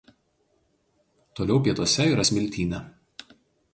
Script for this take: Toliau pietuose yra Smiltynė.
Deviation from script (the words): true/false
false